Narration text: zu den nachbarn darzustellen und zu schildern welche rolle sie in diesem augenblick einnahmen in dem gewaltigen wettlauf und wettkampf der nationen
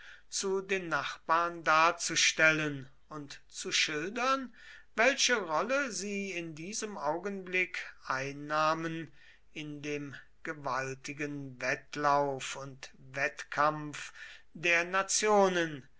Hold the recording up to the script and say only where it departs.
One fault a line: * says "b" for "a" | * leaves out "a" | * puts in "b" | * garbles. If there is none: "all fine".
all fine